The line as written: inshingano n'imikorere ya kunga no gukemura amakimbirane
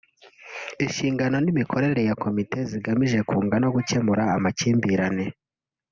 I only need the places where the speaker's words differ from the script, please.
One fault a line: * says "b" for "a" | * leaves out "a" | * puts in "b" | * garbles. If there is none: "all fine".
* puts in "komite zigamije"